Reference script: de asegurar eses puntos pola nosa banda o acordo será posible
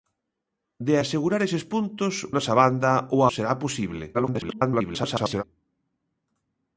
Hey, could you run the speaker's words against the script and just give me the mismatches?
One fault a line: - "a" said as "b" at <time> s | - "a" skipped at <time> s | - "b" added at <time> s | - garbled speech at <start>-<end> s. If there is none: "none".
- "pola" skipped at 2.1 s
- "acordo" skipped at 3.2 s
- garbled speech at 4.1-5.4 s